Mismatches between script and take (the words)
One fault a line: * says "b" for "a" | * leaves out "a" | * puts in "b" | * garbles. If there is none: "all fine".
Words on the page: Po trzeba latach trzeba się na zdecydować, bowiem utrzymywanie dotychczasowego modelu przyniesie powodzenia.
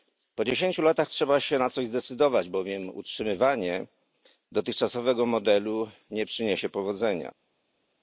* says "dziesięciu" for "trzeba"
* puts in "coś"
* puts in "nie"